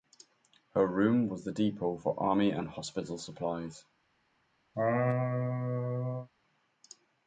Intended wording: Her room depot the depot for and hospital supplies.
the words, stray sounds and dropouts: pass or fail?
fail